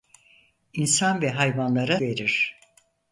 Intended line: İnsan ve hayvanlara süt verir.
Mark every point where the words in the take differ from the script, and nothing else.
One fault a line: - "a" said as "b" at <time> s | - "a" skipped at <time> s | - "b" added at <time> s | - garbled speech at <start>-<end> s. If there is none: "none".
- "süt" skipped at 2.0 s